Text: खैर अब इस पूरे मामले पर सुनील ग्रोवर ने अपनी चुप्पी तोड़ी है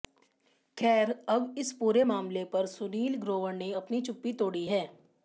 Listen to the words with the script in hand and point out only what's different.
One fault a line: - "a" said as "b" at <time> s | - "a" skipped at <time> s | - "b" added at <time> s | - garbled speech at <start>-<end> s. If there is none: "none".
none